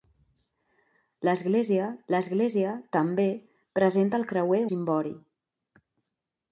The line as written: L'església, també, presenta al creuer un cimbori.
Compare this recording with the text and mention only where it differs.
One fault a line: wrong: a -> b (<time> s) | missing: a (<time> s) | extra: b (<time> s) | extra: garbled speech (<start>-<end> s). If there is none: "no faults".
extra: l'església (2.1 s)
missing: un (4.6 s)